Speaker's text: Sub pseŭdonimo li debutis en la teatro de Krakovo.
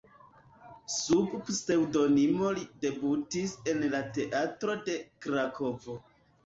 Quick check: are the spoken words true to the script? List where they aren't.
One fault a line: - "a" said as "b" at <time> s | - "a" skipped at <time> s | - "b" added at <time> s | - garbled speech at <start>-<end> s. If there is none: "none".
none